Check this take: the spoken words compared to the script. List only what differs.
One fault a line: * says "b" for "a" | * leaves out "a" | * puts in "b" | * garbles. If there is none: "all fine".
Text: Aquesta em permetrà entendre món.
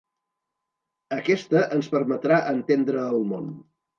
* says "ens" for "em"
* puts in "el"